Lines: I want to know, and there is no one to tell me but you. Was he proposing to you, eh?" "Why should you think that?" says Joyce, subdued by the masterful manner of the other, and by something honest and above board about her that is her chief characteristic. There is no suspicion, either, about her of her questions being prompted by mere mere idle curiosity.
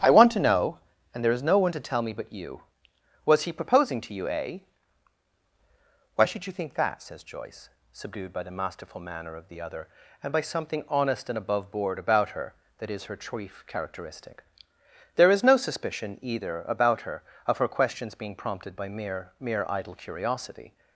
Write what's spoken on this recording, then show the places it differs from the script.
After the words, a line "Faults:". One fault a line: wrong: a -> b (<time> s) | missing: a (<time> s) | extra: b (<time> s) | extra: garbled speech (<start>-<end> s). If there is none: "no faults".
I want to know, and there is no one to tell me but you. Was he proposing to you, eh?" "Why should you think that?" says Joyce, subdued by the masterful manner of the other, and by something honest and above board about her that is her chief characteristic. There is no suspicion, either, about her of her questions being prompted by mere mere idle curiosity.
Faults:
no faults